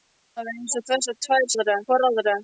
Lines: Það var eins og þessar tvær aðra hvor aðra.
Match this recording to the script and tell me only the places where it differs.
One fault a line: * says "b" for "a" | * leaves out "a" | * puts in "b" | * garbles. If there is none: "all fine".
all fine